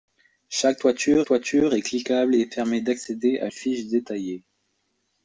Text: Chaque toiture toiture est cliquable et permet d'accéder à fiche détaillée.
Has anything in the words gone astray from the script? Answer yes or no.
no